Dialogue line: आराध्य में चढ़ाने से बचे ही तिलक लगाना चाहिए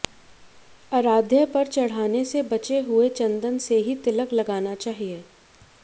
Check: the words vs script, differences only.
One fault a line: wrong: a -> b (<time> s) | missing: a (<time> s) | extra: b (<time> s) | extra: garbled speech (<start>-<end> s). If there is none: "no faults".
wrong: में -> पर (1.5 s)
extra: हुए चंदन से (2.8 s)